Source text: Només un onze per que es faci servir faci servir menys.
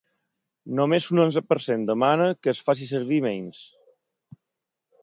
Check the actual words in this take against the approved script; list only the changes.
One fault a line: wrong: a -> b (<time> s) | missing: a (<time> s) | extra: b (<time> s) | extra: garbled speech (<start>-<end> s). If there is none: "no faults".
extra: cent demana (1.7 s)
missing: faci servir (3.2 s)